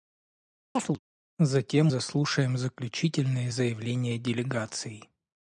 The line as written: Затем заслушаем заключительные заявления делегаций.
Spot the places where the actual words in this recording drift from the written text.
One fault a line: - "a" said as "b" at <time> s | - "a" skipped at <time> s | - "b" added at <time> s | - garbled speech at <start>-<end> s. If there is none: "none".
none